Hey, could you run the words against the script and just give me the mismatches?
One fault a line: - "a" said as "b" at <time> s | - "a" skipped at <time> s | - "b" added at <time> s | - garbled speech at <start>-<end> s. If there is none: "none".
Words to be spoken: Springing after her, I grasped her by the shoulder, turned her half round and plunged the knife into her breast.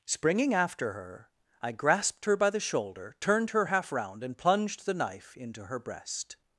none